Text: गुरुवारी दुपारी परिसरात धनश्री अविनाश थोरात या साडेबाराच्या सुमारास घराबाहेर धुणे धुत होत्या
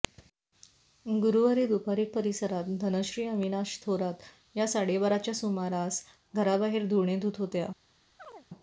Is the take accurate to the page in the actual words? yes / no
yes